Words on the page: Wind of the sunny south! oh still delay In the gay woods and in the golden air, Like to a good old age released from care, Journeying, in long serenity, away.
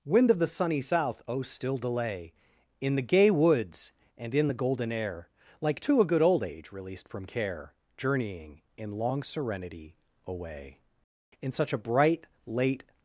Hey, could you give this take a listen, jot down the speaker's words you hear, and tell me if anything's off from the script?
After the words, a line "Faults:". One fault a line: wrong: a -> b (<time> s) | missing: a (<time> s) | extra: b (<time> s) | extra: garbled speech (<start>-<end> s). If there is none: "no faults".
Wind of the sunny south! oh still delay In the gay woods and in the golden air, Like to a good old age released from care, Journeying, in long serenity, away. In such a bright, late
Faults:
extra: In such a bright late (11.4 s)